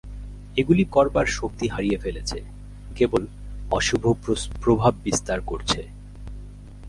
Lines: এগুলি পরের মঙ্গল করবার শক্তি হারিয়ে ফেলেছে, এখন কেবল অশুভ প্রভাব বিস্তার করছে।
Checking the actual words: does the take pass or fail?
fail